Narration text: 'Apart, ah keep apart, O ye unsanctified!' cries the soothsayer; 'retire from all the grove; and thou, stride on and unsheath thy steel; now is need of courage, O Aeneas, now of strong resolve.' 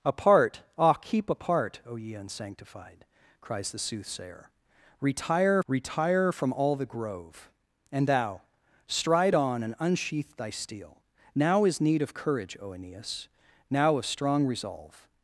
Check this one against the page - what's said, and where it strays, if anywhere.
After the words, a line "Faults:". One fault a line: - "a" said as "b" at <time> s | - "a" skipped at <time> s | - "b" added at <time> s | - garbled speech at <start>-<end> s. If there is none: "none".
'Apart, ah keep apart, O ye unsanctified!' cries the soothsayer; 'retire retire from all the grove; and thou, stride on and unsheath thy steel; now is need of courage, O Aeneas, now of strong resolve.'
Faults:
- "retire" added at 5.7 s